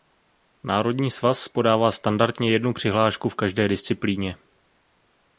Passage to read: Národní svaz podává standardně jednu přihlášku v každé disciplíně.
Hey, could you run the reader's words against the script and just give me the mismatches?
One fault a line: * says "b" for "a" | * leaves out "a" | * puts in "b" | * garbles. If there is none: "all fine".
all fine